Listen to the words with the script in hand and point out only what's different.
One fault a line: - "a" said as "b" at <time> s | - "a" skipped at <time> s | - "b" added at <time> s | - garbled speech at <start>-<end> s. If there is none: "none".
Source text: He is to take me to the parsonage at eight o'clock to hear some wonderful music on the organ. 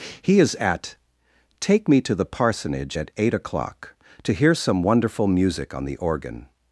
- "to" said as "at" at 0.6 s